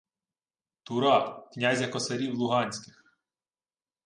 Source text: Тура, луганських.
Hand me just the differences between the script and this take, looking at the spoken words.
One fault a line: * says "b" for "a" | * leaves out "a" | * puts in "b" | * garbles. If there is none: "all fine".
* puts in "князя косарів"